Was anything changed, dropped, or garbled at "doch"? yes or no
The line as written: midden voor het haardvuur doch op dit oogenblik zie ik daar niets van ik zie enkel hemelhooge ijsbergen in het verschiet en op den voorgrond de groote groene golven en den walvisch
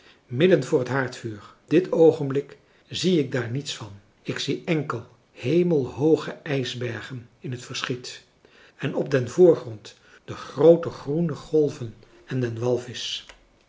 yes